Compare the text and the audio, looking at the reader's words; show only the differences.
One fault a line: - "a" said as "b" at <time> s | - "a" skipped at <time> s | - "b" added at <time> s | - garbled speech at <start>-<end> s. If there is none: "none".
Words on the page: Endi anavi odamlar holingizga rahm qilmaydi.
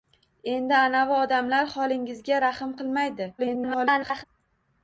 - garbled speech at 3.4-4.2 s